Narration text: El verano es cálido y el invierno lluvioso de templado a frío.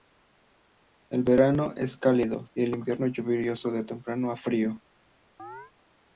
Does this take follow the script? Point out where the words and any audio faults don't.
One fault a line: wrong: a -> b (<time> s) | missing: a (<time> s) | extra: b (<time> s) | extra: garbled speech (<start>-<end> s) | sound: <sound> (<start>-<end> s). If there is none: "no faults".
sound: chirp (5.4-5.7 s)